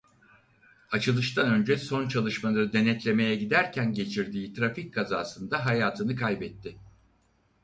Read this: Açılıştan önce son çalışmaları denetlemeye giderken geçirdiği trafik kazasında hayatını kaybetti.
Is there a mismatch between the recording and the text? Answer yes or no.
no